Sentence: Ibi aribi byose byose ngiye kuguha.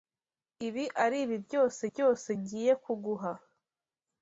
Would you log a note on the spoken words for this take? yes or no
no